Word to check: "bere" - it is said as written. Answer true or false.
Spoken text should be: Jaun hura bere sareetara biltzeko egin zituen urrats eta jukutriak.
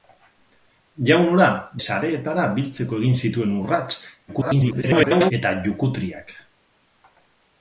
false